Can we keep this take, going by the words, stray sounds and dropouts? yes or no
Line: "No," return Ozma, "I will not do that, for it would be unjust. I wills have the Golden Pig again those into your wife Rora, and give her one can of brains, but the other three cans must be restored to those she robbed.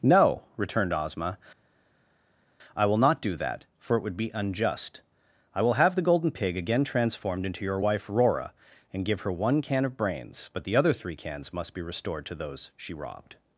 no